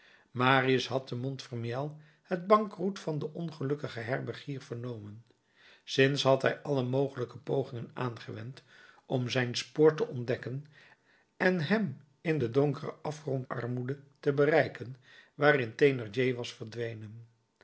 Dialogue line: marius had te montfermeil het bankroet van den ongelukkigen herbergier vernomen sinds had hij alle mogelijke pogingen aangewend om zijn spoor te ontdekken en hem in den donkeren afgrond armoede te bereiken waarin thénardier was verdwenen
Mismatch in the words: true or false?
false